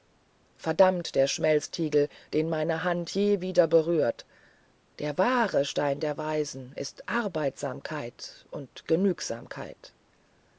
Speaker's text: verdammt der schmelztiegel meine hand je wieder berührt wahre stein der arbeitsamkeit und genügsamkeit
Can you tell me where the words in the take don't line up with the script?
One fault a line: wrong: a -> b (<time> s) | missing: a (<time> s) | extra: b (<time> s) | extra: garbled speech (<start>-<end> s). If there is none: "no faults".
extra: den (2.3 s)
extra: der (5.0 s)
extra: weisen ist (6.2 s)